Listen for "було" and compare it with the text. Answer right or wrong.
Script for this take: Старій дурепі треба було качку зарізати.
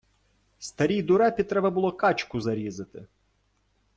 right